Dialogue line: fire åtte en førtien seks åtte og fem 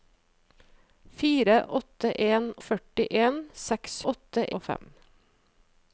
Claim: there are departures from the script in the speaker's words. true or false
false